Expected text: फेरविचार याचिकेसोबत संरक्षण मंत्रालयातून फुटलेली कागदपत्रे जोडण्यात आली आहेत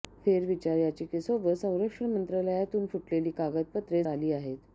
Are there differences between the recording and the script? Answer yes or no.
yes